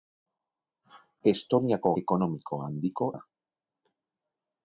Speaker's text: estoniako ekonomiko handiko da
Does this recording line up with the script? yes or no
yes